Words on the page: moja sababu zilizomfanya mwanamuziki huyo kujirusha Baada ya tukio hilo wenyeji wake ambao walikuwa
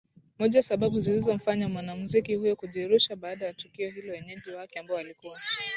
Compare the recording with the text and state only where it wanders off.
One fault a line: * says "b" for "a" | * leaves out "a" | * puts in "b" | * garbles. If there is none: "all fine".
all fine